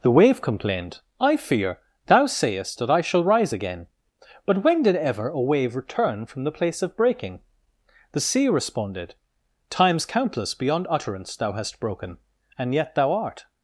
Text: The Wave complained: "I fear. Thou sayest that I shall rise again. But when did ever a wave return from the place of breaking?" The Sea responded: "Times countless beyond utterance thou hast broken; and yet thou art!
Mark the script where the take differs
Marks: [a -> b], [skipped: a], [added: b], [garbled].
The Wave complained: "I fear. Thou sayest that I shall rise again. But when did ever a wave return from the place of breaking?" The Sea responded: "Times countless beyond utterance thou hast broken; and yet thou art!